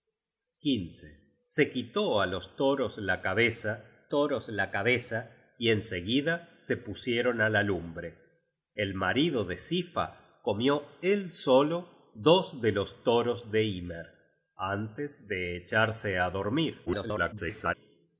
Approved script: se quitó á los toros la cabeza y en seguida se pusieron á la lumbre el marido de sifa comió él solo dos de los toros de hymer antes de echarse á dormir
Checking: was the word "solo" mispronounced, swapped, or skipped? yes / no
no